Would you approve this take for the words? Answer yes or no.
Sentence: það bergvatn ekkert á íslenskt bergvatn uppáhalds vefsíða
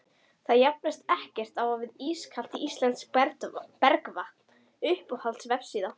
no